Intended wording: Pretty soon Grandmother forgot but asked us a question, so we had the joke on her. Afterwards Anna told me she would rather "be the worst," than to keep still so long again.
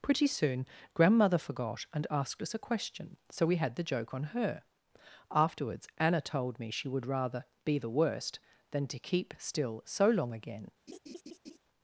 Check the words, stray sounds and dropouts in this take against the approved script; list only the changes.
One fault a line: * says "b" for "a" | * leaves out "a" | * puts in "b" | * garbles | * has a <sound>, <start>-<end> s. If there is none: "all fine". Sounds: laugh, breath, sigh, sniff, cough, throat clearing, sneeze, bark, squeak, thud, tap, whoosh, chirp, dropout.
* says "and" for "but"
* has a laugh, 10.9-11.6 s